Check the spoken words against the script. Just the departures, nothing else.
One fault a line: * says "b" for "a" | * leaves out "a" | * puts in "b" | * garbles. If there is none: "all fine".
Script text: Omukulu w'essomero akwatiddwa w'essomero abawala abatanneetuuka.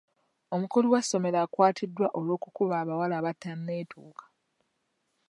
* says "olw'okukuba" for "w'essomero"